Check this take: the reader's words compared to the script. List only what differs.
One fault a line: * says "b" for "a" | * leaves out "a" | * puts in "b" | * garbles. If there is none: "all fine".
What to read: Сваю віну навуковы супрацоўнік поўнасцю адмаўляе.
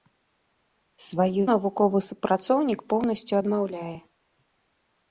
* leaves out "віну"